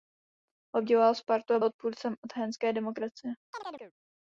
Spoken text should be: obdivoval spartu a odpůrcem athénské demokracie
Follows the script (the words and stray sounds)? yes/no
no